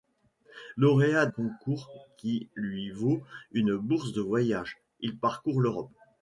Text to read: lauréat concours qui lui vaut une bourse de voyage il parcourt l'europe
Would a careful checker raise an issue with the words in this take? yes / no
no